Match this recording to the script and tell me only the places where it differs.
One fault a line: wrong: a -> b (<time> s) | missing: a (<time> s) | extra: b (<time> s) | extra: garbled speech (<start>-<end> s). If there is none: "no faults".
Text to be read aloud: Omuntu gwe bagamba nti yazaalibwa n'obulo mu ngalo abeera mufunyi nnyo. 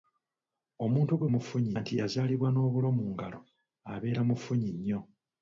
wrong: bagamba -> mufunyi (1.3 s)